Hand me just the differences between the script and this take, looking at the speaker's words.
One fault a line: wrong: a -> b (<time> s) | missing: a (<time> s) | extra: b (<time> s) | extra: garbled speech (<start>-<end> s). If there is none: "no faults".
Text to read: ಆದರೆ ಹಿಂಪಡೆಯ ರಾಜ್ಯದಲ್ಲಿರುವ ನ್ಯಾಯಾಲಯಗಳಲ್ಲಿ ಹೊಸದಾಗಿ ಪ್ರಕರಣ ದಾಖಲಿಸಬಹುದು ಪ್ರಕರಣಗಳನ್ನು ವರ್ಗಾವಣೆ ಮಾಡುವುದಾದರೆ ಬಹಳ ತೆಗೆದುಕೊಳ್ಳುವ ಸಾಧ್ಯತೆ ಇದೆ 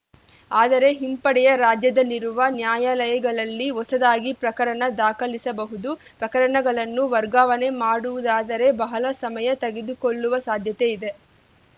extra: ಸಮಯ (9.2 s)